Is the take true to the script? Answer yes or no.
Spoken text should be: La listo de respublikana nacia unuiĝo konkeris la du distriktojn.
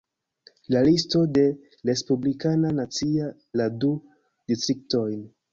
no